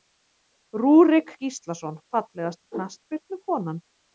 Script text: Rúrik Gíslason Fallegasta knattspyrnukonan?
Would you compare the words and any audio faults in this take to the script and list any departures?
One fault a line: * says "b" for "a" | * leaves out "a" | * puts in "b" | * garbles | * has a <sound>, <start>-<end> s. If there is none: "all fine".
all fine